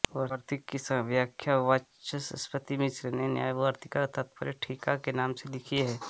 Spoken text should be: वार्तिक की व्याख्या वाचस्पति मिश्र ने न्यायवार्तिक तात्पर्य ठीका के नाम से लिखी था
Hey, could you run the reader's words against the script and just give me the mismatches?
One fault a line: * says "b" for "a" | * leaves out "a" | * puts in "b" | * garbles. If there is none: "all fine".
* says "है" for "था"